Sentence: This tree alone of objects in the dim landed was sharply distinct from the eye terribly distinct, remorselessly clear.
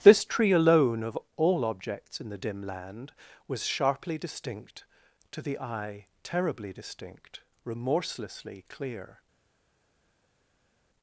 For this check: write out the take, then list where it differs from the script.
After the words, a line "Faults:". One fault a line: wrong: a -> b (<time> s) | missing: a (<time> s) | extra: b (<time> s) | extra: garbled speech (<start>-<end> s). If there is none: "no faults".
This tree alone of all objects in the dim land was sharply distinct to the eye terribly distinct, remorselessly clear.
Faults:
extra: all (1.4 s)
wrong: landed -> land (2.6 s)
wrong: from -> to (5.3 s)